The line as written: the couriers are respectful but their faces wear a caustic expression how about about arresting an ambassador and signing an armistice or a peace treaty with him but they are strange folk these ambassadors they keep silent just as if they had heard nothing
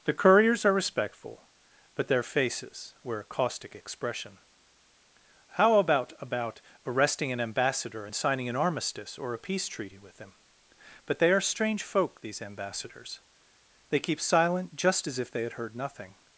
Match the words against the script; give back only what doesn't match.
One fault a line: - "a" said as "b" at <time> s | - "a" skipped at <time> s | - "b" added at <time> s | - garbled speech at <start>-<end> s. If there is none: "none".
none